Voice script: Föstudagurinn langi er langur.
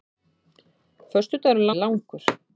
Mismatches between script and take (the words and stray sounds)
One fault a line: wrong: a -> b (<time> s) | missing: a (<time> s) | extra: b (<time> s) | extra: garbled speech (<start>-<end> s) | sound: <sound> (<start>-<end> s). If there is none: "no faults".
missing: langi (1.7 s)